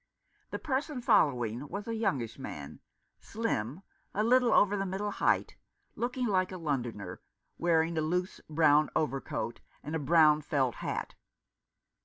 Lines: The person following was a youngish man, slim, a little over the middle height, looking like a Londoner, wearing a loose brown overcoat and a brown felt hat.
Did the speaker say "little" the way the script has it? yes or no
yes